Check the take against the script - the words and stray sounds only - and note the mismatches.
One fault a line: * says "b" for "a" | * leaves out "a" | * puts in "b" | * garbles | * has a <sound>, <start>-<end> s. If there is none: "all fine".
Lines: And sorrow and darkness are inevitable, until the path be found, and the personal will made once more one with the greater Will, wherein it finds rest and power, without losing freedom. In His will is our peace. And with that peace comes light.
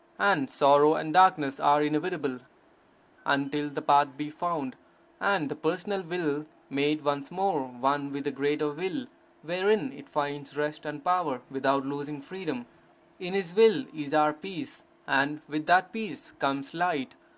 all fine